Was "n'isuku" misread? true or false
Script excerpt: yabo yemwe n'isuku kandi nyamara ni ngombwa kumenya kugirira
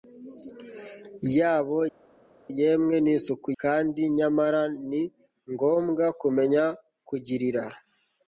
false